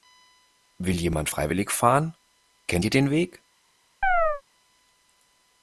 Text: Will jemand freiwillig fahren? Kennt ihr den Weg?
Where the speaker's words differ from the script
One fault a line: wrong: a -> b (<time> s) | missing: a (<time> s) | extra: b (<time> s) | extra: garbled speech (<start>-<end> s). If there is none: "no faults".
no faults